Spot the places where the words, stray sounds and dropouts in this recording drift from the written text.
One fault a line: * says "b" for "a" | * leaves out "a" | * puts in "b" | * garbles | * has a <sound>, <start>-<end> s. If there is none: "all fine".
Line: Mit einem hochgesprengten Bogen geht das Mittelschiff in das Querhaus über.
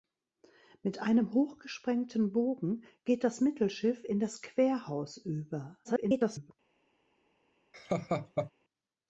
* garbles
* has a laugh, 7.7-8.5 s